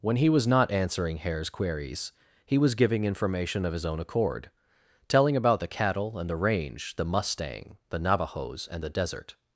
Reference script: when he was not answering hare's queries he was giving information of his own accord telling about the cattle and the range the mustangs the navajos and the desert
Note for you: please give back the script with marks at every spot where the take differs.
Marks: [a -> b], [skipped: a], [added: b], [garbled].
when he was not answering hare's queries he was giving information of his own accord telling about the cattle and the range the [mustangs -> mustang] the navajos and the desert